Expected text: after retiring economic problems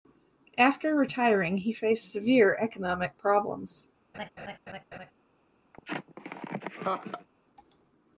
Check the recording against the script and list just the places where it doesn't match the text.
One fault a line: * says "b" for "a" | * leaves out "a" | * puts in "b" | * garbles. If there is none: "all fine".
* puts in "he faced severe"